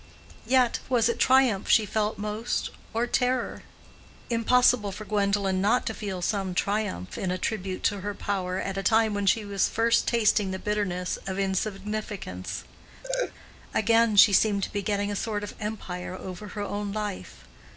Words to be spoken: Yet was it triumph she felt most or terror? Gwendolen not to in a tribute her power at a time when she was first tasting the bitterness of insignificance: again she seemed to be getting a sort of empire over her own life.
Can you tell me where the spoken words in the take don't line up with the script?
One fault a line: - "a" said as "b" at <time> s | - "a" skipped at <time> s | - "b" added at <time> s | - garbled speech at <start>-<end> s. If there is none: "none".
- "Impossible for" added at 4.3 s
- "feel some triumph" added at 5.9 s
- "to" added at 7.8 s